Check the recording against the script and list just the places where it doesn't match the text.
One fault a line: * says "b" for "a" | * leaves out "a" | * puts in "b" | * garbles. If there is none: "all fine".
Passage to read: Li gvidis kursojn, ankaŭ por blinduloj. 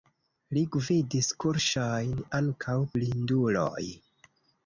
* leaves out "por"